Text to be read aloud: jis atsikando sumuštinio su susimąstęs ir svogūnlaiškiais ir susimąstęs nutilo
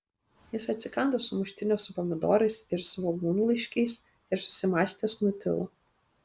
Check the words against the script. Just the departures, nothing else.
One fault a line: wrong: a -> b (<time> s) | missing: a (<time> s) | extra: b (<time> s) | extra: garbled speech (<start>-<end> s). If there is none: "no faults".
wrong: susimąstęs -> pomidorais (2.0 s)